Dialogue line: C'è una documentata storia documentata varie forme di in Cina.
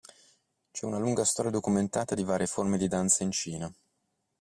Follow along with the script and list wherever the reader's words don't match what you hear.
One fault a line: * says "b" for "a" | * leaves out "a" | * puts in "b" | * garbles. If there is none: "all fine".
* says "lunga" for "documentata"
* puts in "di"
* puts in "danza"